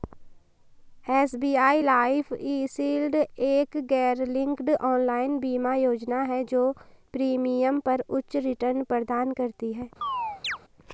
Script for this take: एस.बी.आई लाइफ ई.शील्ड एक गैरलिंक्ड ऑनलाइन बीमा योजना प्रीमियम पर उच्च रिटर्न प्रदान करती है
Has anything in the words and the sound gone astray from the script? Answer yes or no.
yes